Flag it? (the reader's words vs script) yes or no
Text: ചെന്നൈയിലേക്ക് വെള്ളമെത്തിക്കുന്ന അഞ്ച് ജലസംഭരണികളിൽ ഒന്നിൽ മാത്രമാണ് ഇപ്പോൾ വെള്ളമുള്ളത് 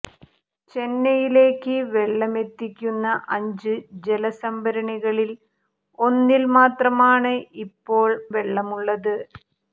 no